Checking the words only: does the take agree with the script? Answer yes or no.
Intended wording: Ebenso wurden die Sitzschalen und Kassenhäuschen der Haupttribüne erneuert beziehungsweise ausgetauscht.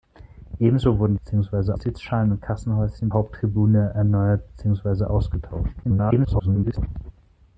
no